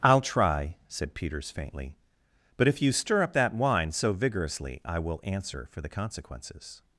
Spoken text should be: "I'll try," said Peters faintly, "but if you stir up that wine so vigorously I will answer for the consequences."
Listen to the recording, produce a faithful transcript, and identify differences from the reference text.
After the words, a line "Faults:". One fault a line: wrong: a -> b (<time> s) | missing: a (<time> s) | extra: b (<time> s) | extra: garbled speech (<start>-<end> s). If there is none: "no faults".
"I'll try," said Peters faintly, "but if you stir up that wine so vigorously I will answer for the consequences."
Faults:
no faults